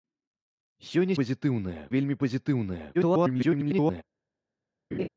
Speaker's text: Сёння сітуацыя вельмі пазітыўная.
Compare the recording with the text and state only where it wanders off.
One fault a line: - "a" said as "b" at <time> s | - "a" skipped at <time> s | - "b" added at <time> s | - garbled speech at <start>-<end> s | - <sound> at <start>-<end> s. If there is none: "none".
- "сітуацыя" said as "пазітыўная" at 1.2 s
- garbled speech at 2.9-4.0 s
- laugh at 4.9-5.1 s